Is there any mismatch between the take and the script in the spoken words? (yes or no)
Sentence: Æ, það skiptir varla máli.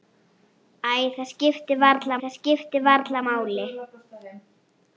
yes